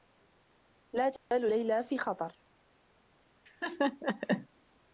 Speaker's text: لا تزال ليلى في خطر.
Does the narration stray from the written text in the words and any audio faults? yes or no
yes